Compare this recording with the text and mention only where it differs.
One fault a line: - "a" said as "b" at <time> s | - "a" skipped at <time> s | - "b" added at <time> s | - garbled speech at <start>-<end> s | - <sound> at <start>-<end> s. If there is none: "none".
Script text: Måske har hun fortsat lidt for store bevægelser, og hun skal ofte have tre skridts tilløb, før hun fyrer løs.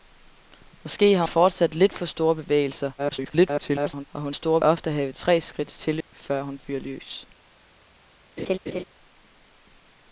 - "hun" skipped at 1.2 s
- garbled speech at 3.0-4.1 s
- "skal" said as "store" at 4.3 s
- dropout at 6.0-6.1 s
- laugh at 8.4-8.8 s